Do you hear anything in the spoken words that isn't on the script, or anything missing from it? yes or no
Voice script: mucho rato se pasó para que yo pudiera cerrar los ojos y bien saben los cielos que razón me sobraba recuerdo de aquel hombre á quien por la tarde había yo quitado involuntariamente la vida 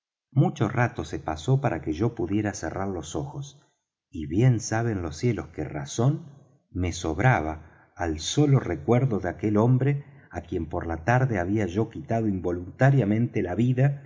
yes